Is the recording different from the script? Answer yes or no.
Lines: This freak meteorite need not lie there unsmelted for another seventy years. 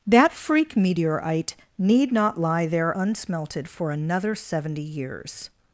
yes